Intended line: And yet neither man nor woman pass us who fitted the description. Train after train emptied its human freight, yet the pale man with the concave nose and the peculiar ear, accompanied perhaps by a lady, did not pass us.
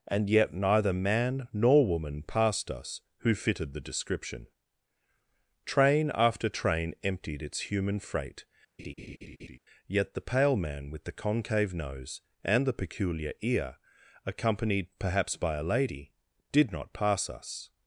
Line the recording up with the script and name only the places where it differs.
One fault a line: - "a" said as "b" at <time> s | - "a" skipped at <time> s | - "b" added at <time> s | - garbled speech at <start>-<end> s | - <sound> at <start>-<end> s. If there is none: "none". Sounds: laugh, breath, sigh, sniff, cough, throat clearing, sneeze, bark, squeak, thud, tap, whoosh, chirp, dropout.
- "pass" said as "passed" at 2.2 s
- laugh at 8.8-9.6 s